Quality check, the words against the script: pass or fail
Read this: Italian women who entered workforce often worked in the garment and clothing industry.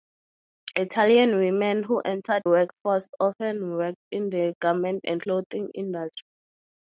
pass